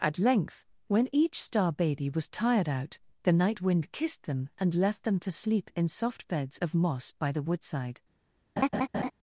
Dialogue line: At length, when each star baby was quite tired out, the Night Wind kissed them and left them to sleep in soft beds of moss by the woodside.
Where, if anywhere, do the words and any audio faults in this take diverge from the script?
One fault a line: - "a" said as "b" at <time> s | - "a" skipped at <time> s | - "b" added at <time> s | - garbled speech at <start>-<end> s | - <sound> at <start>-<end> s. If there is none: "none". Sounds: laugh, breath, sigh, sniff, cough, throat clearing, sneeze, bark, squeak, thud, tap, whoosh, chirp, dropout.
- "quite" skipped at 2.3 s
- laugh at 8.6-9.1 s